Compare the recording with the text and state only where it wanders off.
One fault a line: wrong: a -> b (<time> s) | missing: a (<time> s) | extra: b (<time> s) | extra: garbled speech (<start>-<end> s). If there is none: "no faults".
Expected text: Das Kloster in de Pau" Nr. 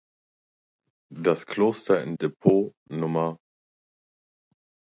no faults